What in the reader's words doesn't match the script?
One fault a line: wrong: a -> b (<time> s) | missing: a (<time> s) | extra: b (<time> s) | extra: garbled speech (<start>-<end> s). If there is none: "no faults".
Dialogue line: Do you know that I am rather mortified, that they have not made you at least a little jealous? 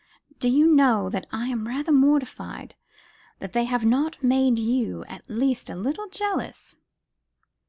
no faults